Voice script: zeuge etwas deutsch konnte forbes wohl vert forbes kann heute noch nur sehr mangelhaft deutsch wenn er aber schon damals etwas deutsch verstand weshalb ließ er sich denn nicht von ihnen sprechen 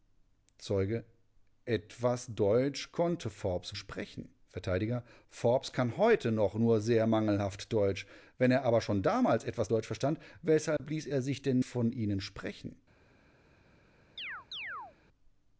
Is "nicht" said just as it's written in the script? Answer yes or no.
no